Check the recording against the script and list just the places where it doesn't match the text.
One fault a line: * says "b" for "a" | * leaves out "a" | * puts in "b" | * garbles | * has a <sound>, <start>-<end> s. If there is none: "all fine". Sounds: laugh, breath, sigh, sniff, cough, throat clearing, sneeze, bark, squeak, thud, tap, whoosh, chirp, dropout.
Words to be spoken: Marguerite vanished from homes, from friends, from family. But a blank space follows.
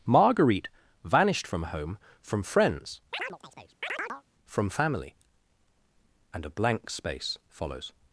* says "home" for "homes"
* has a chirp, 3.1-4.2 s
* says "And" for "But"